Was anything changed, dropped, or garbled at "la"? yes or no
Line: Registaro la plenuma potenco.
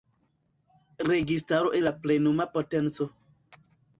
no